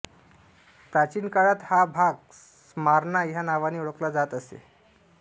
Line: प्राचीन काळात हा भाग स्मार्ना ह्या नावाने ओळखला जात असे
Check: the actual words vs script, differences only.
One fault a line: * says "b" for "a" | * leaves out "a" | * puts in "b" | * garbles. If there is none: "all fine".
all fine